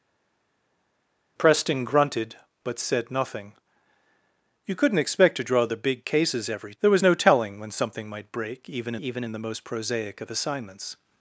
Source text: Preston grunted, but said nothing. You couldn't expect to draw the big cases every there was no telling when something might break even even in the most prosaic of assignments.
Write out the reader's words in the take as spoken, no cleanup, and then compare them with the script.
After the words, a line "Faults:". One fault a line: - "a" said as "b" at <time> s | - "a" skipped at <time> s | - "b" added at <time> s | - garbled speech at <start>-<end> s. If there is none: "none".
Preston grunted, but said nothing. You couldn't expect to draw the big cases every there was no telling when something might break even even in the most prosaic of assignments.
Faults:
none